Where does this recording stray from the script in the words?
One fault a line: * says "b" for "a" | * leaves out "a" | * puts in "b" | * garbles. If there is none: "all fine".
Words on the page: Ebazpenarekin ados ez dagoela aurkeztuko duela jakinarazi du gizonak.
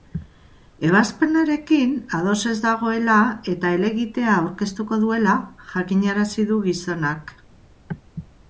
* puts in "eta helegitea"